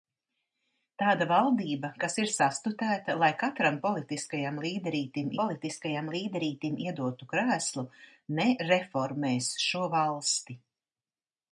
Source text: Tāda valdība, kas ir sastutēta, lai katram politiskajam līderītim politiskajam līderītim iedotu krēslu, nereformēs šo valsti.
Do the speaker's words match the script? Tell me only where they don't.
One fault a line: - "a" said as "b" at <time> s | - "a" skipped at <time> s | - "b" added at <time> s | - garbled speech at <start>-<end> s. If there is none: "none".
none